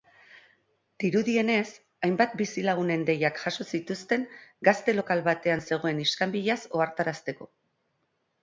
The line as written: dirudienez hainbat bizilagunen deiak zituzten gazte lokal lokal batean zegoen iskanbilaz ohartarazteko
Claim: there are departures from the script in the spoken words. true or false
true